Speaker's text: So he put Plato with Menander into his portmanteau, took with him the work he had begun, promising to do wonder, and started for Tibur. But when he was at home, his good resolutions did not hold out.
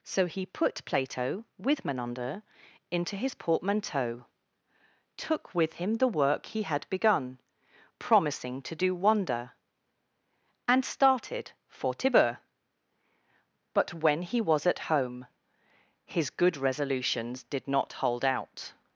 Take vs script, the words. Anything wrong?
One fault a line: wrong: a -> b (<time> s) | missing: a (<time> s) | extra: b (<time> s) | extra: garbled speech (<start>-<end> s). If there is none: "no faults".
no faults